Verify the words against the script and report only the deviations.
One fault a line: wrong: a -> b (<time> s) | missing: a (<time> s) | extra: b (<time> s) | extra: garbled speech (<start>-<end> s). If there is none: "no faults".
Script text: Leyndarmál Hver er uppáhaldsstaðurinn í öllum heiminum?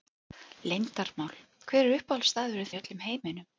no faults